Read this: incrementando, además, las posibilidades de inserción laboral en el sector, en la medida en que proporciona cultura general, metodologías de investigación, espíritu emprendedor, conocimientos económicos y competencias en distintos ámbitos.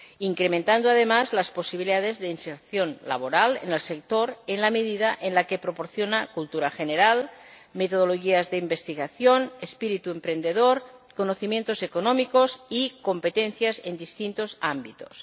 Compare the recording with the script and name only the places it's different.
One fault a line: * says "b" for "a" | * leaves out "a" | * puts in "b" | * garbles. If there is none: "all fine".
all fine